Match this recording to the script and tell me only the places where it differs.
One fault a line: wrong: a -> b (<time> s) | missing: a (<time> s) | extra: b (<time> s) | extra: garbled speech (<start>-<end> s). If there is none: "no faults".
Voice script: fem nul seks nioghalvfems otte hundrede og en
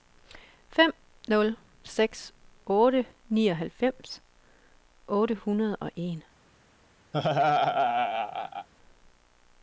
extra: otte (2.8 s)